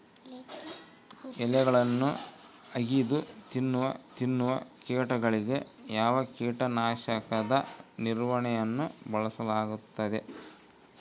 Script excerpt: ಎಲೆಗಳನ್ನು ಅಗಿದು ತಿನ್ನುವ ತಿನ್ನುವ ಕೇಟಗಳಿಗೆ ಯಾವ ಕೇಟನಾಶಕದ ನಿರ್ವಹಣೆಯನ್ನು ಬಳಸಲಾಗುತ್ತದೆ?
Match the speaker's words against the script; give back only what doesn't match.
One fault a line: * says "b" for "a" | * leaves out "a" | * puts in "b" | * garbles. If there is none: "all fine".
all fine